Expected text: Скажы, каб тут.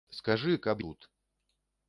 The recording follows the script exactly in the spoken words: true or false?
true